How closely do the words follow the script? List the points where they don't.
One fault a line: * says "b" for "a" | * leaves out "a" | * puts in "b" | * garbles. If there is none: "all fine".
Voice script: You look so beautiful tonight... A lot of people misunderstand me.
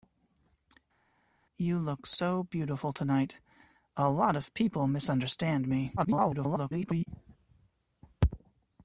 * garbles